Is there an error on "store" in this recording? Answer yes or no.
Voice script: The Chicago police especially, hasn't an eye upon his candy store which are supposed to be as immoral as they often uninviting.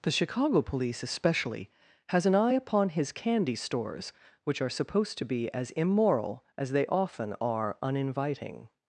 yes